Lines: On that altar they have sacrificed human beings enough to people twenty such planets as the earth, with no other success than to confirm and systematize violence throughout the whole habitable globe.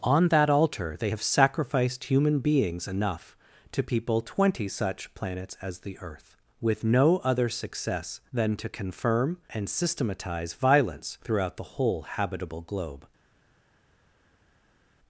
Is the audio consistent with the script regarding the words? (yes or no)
yes